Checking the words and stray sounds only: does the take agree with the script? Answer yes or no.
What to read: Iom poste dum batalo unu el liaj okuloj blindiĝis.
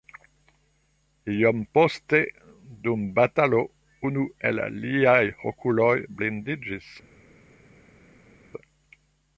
yes